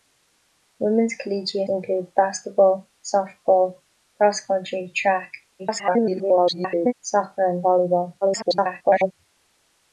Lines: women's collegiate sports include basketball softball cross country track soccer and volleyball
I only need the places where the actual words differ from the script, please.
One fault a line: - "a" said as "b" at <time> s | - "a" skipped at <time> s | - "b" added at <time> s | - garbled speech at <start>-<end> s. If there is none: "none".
- "sports" skipped at 1.7 s
- garbled speech at 5.6-6.9 s
- garbled speech at 8.2-9.1 s